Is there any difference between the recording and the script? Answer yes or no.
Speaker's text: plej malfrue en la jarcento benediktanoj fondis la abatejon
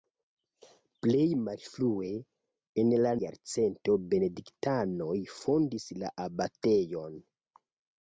no